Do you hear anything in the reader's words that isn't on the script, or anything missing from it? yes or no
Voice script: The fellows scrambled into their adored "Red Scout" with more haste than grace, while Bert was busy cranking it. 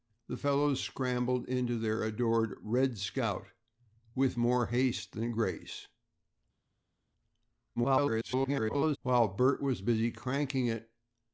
yes